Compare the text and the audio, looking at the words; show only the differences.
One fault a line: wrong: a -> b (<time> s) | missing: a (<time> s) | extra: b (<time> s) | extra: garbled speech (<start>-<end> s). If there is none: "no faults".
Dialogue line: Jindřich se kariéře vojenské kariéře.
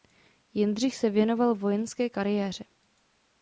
wrong: kariéře -> věnoval (1.1 s)